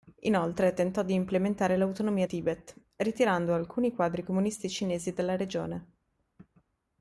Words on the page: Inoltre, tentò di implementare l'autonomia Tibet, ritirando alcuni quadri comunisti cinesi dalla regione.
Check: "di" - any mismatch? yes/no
no